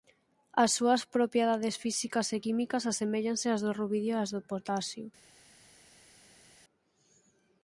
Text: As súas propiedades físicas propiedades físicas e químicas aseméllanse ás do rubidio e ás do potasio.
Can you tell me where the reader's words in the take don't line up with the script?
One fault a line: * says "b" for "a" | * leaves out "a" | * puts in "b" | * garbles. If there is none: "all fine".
* leaves out "propiedades físicas"